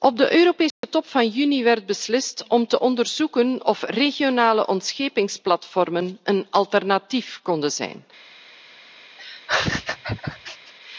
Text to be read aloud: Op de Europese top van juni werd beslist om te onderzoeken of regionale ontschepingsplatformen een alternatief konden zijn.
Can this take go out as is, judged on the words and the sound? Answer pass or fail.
fail